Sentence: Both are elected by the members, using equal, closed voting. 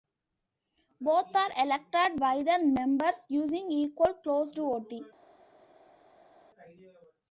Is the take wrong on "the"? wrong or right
right